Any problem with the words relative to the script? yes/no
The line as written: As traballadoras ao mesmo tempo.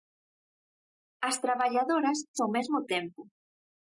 no